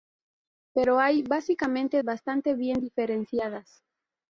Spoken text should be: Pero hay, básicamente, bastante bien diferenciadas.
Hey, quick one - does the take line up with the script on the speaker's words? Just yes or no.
yes